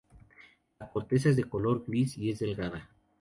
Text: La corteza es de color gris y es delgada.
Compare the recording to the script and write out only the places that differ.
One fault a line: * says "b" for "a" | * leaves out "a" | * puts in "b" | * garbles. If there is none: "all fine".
all fine